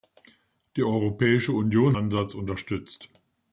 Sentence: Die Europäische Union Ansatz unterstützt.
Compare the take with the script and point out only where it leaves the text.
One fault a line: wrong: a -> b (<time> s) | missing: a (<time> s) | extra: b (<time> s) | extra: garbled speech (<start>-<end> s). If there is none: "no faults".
no faults